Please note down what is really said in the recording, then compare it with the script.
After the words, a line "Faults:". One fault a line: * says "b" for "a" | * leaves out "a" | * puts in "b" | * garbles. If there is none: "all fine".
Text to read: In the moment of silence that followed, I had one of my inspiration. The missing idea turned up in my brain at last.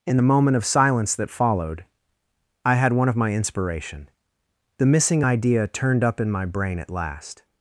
In the moment of silence that followed, I had one of my inspiration. The missing idea turned up in my brain at last.
Faults:
all fine